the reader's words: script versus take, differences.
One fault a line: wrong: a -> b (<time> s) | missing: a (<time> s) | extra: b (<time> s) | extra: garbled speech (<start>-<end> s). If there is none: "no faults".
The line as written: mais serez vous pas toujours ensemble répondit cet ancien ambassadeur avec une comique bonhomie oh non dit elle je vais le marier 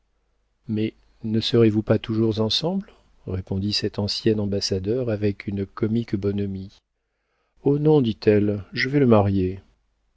extra: ne (1.2 s)